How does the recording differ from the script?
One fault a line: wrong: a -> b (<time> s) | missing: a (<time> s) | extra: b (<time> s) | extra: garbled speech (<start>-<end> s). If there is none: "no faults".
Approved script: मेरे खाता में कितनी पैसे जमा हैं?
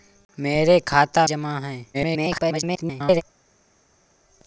missing: में कितनी पैसे (1.3 s)
extra: garbled speech (1.9-3.2 s)